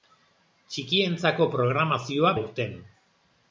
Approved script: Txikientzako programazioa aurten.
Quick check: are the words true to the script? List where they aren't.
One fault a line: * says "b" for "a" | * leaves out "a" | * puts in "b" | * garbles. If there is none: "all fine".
all fine